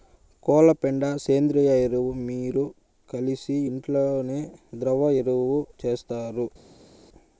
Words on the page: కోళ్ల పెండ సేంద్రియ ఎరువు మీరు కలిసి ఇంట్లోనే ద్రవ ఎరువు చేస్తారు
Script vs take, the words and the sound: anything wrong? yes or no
no